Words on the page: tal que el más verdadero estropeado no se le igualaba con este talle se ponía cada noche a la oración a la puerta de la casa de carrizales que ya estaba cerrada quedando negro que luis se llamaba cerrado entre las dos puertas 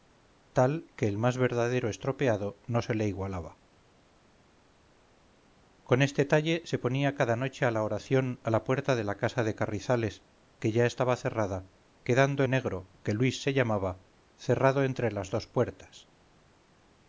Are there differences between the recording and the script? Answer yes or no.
no